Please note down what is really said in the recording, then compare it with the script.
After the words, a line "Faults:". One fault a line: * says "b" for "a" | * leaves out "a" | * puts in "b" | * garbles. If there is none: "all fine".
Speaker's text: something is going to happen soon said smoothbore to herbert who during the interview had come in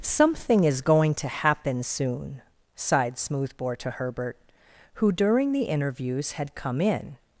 something is going to happen soon sighed smoothbore to herbert who during the interviews had come in
Faults:
* says "sighed" for "said"
* says "interviews" for "interview"